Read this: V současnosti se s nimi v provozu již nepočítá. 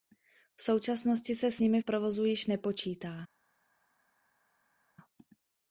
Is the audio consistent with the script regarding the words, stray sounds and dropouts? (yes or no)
yes